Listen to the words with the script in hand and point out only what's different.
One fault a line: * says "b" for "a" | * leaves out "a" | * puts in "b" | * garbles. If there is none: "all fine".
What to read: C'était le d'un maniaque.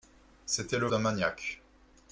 all fine